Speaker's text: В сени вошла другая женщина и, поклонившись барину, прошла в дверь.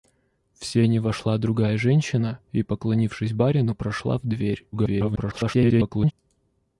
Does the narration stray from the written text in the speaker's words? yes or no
yes